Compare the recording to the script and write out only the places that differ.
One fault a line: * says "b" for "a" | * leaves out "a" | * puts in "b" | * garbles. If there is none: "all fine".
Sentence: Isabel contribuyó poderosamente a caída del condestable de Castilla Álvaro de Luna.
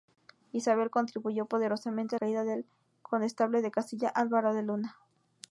all fine